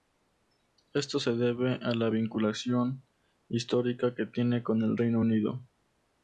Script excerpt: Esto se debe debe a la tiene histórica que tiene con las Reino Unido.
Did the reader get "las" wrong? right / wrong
wrong